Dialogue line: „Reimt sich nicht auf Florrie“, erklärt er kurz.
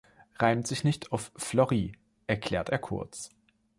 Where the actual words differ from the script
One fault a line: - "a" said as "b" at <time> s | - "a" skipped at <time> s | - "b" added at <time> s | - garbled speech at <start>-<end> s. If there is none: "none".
none